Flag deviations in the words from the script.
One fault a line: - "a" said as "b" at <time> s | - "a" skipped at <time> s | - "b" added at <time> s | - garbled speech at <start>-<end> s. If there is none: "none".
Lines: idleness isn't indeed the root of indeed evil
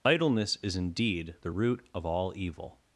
- "isn't" said as "is" at 0.6 s
- "indeed" said as "all" at 2.0 s